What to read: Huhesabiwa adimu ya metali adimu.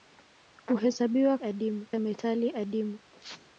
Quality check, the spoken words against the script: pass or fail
pass